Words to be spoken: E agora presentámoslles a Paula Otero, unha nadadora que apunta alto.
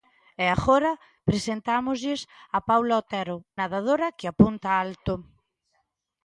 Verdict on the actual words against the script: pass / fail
fail